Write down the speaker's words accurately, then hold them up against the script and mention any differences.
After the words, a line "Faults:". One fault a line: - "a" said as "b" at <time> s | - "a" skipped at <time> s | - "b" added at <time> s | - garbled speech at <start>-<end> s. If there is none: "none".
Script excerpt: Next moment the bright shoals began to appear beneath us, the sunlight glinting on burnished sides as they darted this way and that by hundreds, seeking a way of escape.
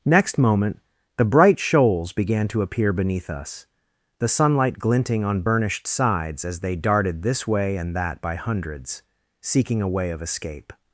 Next moment the bright shoals began to appear beneath us, the sunlight glinting on burnished sides as they darted this way and that by hundreds, seeking a way of escape.
Faults:
none